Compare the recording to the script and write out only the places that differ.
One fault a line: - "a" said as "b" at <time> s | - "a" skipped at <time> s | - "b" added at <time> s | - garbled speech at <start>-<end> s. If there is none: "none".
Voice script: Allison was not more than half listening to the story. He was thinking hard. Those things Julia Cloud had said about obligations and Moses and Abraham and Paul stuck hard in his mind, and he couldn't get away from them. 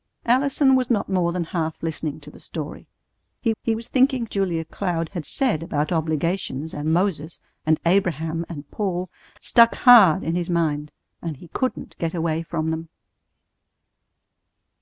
- "he" added at 3.6 s
- "hard Those things" skipped at 4.3 s